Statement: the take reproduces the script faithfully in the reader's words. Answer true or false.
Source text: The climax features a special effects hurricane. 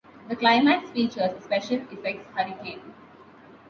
true